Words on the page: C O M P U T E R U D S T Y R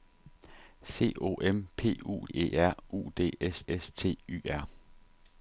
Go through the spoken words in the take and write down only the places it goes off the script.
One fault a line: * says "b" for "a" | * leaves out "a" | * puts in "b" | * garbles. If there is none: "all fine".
* leaves out "T"
* puts in "S"